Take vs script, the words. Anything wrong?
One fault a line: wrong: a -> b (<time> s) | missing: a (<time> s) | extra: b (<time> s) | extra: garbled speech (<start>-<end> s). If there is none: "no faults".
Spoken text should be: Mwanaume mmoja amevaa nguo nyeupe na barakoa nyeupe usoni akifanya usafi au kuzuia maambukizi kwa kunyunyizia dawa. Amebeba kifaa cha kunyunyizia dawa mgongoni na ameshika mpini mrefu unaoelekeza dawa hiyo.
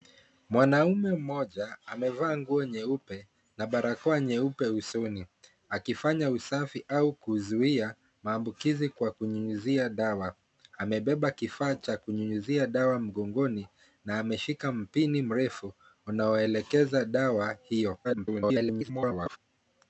extra: garbled speech (18.0-19.4 s)